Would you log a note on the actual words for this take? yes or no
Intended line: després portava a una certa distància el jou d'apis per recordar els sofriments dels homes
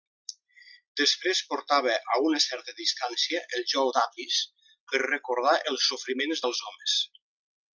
no